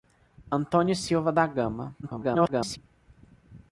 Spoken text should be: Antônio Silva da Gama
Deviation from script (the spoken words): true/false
true